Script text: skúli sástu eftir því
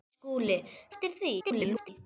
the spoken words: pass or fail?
fail